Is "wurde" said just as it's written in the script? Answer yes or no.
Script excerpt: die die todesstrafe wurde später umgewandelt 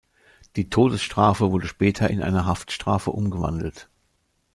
yes